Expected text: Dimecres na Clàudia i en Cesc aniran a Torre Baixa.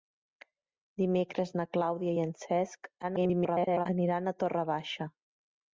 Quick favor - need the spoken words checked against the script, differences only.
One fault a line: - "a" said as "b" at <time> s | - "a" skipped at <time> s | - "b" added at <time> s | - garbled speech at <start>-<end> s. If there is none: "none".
- garbled speech at 3.0-3.9 s